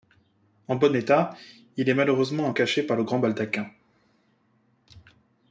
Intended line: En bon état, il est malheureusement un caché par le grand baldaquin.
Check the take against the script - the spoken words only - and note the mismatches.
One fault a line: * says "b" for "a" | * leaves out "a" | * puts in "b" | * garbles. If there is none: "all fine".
all fine